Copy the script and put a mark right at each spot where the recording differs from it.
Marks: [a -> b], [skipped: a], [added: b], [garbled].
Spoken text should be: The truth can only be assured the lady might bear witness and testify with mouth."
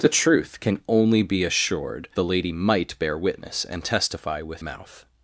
The truth can only be assured the lady might bear witness and testify with mouth."